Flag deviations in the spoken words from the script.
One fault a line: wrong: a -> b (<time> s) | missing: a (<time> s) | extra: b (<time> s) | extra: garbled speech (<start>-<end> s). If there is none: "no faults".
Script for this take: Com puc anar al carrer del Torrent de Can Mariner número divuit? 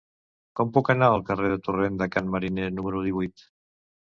no faults